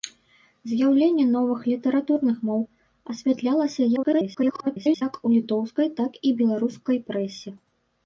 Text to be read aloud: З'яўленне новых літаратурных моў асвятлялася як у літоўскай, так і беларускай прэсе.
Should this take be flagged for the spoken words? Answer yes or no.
yes